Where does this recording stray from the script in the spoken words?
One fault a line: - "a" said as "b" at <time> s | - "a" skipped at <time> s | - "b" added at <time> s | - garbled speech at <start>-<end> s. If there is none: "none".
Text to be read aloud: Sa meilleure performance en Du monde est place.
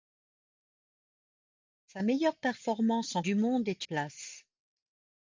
none